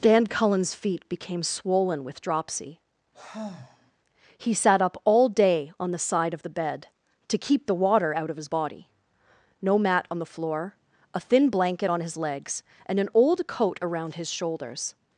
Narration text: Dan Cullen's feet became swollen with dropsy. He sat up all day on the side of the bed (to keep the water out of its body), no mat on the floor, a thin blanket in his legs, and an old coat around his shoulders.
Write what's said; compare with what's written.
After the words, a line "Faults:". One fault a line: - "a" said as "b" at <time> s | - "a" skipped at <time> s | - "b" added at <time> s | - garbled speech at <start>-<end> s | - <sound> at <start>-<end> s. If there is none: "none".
Dan Cullen's feet became swollen with dropsy. He sat up all day on the side of the bed (to keep the water out of his body), no mat on the floor, a thin blanket on his legs, and an old coat around his shoulders.
Faults:
- sigh at 3.1-3.9 s
- "its" said as "his" at 8.4 s
- "in" said as "on" at 11.9 s